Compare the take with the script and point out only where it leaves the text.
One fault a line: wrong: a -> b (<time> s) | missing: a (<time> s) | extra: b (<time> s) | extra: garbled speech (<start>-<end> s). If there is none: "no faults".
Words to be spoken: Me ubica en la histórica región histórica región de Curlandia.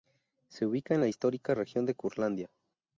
wrong: Me -> Se (0.5 s)
missing: histórica región (1.9 s)